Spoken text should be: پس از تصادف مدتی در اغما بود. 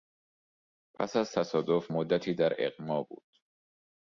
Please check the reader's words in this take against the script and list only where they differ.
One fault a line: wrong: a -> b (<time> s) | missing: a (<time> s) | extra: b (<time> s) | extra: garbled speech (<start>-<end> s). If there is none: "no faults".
no faults